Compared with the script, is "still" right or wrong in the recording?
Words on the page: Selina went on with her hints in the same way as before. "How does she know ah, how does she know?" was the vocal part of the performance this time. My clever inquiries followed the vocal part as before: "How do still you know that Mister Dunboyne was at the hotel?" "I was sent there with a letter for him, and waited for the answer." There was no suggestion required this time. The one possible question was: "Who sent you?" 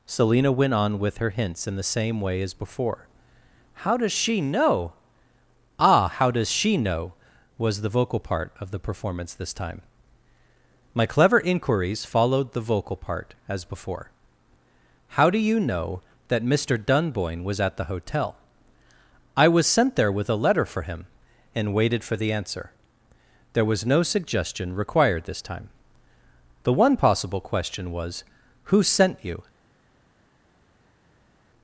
wrong